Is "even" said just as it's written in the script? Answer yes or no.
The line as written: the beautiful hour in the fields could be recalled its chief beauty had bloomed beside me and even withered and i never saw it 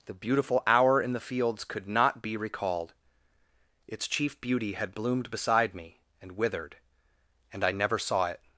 no